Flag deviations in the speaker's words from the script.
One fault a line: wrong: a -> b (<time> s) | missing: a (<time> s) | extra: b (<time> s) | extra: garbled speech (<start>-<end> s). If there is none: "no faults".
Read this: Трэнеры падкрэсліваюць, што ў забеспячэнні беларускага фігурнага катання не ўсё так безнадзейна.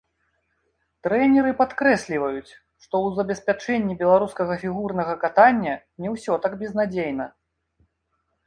no faults